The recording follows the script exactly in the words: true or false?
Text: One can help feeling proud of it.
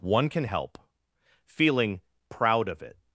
true